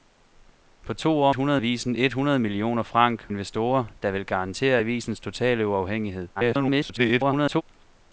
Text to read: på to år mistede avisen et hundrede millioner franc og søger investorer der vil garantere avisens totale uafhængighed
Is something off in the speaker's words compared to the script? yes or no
yes